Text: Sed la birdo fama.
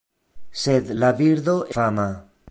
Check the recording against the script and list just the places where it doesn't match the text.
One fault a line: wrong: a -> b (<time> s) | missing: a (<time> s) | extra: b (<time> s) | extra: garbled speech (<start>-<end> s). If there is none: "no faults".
no faults